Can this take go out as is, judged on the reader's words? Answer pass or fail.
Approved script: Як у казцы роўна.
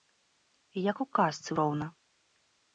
pass